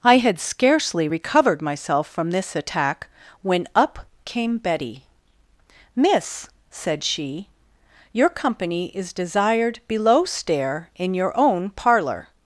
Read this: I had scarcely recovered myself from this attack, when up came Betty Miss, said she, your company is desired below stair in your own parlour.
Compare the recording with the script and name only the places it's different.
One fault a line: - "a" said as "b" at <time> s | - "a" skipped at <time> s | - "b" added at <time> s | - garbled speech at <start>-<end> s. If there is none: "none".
none